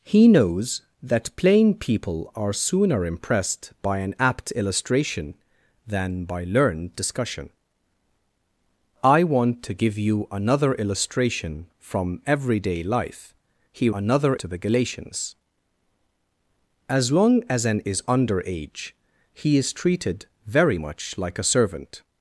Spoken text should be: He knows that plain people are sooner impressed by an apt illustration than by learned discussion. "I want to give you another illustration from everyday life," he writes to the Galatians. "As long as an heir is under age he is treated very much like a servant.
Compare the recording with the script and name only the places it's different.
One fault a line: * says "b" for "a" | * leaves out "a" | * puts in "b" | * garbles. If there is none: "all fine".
* says "another" for "writes"
* leaves out "heir"